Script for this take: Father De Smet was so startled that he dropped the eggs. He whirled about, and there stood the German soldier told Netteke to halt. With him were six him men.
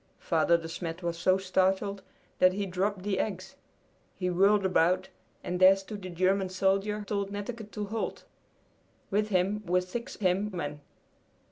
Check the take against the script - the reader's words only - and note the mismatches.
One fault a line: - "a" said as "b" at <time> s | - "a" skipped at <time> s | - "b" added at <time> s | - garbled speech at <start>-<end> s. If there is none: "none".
none